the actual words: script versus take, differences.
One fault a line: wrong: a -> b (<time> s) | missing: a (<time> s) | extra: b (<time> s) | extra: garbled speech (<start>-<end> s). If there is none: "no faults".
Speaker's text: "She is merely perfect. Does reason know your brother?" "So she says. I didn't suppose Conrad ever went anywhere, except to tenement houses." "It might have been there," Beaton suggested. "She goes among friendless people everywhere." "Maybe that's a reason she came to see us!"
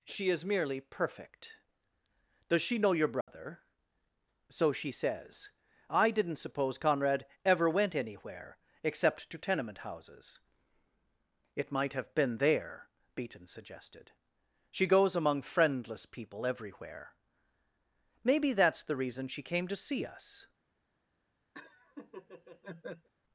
wrong: reason -> she (2.6 s)
wrong: a -> the (18.8 s)